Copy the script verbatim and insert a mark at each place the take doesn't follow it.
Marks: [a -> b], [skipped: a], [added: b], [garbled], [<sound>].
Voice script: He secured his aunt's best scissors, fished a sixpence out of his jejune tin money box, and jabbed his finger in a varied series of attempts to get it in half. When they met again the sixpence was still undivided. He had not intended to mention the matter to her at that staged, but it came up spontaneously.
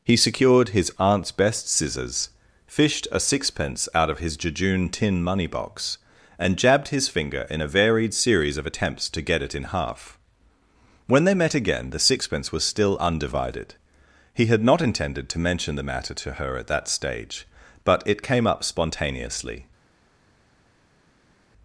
He secured his aunt's best scissors, fished a sixpence out of his jejune tin money box, and jabbed his finger in a varied series of attempts to get it in half. When they met again the sixpence was still undivided. He had not intended to mention the matter to her at that [staged, -> stage] but it came up spontaneously.